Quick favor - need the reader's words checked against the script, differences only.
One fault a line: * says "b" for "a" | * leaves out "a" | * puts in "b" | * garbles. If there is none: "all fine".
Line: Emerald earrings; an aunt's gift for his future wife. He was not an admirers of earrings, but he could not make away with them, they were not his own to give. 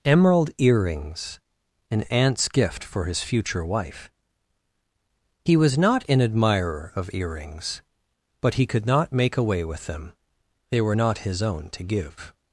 * says "admirer" for "admirers"